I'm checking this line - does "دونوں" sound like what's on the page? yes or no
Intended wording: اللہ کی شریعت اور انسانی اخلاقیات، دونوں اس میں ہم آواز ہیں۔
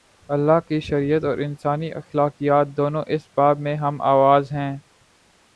yes